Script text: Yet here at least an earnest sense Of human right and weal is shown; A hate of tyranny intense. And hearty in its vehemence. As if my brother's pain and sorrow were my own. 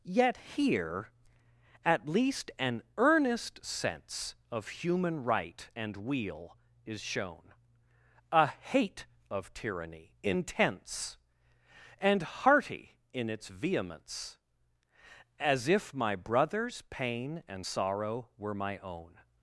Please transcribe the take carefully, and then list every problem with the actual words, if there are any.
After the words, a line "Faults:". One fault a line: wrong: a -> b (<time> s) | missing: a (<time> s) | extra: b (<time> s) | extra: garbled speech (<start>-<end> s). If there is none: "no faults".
Yet here at least an earnest sense Of human right and weal is shown; A hate of tyranny intense. And hearty in its vehemence. As if my brother's pain and sorrow were my own.
Faults:
no faults